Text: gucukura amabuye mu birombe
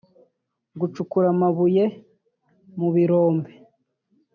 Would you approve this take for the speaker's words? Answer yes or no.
yes